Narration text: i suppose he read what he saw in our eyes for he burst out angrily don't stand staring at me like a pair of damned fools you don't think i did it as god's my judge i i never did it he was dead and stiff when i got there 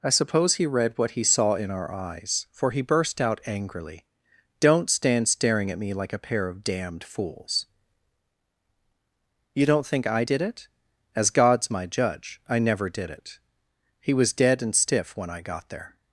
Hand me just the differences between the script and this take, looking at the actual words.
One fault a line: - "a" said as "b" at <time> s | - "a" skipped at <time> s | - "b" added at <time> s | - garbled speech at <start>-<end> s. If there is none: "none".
- "i" skipped at 12.6 s